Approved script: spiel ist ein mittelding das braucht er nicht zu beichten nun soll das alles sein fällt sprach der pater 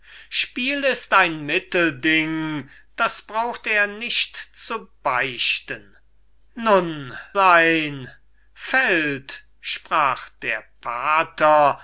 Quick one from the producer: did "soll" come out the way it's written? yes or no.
no